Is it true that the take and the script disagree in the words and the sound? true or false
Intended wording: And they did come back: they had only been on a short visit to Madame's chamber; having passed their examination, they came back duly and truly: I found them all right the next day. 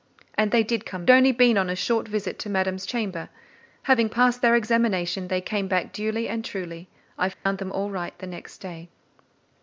true